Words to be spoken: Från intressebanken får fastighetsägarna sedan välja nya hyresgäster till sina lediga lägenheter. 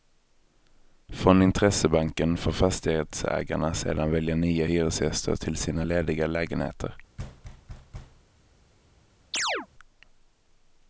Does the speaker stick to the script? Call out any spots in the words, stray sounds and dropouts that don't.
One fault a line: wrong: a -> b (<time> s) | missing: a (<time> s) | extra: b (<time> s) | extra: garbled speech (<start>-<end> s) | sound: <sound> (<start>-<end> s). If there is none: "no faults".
sound: thud (7.2-8.2 s)
sound: chirp (9.3-9.7 s)